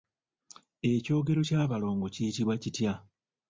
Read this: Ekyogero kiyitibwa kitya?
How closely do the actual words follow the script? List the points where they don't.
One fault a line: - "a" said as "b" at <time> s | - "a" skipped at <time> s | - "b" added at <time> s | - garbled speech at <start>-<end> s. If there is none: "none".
- "ky'abalongo" added at 1.5 s